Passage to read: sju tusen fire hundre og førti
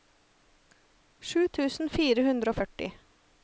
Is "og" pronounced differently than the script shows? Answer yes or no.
no